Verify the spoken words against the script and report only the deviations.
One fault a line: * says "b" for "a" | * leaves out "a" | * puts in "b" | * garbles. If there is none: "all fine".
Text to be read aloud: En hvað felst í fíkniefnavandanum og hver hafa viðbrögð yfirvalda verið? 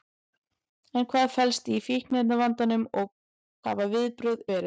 * leaves out "hver"
* leaves out "yfirvalda"